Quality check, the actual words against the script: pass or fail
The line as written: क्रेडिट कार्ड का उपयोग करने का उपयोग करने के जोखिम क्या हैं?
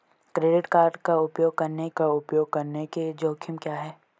pass